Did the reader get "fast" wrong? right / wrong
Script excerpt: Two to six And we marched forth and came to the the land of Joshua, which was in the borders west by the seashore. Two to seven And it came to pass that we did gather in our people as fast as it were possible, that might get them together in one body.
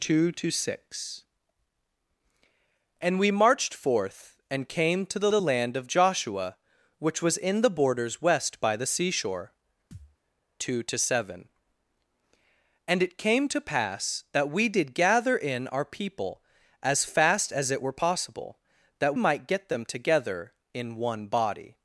right